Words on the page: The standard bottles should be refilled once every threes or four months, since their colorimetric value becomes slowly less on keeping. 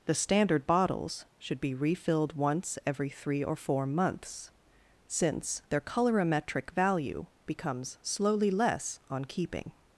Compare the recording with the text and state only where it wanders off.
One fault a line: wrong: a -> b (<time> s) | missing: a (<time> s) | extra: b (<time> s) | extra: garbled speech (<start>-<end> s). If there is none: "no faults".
wrong: threes -> three (3.1 s)